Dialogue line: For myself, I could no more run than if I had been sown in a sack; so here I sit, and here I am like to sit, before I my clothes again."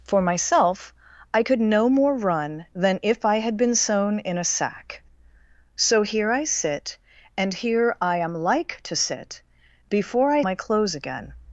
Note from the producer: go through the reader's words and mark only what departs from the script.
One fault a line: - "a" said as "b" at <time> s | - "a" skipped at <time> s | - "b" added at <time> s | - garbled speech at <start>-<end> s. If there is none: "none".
none